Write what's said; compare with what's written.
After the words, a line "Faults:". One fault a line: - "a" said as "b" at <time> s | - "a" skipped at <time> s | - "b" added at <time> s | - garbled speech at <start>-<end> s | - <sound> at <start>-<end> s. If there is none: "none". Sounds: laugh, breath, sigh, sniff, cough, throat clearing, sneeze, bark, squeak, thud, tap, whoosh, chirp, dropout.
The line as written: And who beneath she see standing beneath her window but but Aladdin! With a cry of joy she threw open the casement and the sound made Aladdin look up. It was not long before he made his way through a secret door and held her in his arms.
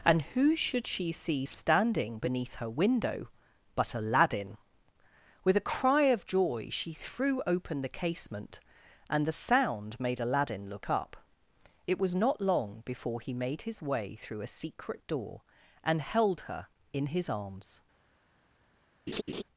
And who should she see standing beneath her window but Aladdin! With a cry of joy she threw open the casement and the sound made Aladdin look up. It was not long before he made his way through a secret door and held her in his arms.
Faults:
- "beneath" said as "should" at 0.6 s
- "but" skipped at 3.9 s
- laugh at 19.1-19.4 s